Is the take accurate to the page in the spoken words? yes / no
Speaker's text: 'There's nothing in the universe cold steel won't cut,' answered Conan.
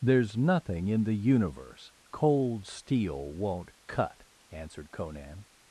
yes